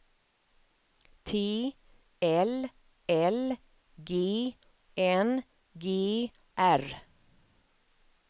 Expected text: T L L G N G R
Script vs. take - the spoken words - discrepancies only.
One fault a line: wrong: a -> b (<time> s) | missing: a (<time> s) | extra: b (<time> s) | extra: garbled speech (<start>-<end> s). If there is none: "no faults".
no faults